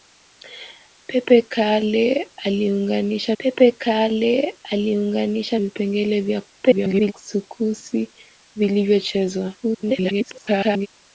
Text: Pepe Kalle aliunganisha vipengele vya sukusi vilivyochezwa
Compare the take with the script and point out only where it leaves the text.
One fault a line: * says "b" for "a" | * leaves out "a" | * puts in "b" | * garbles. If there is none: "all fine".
* puts in "pepe Kalle aliunganisha"
* garbles
* garbles